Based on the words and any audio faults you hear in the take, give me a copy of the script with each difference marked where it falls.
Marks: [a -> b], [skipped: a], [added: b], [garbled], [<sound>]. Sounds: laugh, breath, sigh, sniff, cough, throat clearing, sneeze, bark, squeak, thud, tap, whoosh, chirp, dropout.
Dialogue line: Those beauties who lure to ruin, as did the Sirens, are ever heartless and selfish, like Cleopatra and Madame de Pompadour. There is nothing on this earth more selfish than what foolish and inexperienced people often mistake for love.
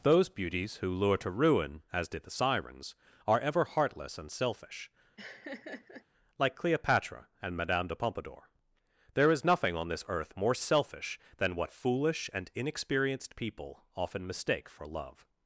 Those beauties who lure to ruin, as did the Sirens, are ever heartless and selfish, [laugh] like Cleopatra and Madame de Pompadour. There is nothing on this earth more selfish than what foolish and inexperienced people often mistake for love.